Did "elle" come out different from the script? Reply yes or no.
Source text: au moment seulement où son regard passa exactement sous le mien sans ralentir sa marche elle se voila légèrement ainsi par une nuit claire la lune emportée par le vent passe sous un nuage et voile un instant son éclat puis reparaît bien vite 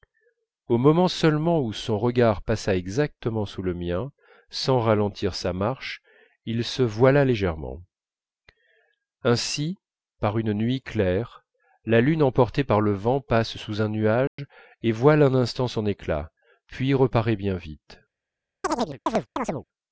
yes